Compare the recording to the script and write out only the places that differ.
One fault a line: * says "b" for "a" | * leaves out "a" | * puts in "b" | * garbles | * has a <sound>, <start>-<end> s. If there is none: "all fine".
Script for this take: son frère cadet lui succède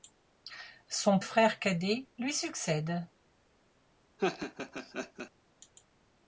* has a laugh, 4.2-5.3 s